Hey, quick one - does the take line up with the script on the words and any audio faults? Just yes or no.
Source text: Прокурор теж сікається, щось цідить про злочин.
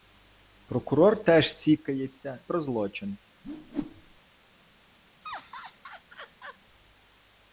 no